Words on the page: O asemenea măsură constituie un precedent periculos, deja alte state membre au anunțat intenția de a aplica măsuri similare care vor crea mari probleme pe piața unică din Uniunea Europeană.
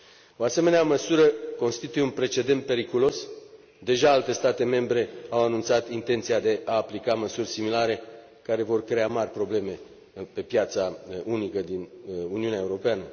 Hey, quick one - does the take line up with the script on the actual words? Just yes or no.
yes